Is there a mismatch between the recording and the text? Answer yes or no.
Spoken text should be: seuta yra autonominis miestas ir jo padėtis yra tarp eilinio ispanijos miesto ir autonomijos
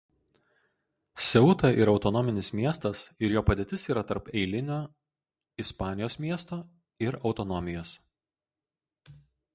no